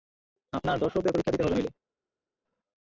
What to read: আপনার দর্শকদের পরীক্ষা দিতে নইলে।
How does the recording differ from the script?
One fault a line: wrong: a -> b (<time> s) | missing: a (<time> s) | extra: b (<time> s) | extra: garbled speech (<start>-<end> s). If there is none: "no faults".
extra: হবে (1.4 s)